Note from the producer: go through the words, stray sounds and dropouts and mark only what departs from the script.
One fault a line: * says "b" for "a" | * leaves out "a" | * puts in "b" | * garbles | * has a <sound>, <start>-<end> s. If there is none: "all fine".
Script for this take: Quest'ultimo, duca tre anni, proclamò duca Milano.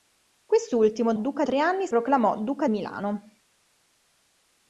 all fine